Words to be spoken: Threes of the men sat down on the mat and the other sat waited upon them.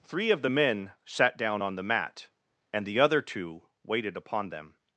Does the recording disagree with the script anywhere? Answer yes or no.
yes